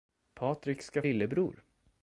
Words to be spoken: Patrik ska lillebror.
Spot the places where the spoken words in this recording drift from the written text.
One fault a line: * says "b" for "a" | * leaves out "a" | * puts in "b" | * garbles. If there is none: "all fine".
all fine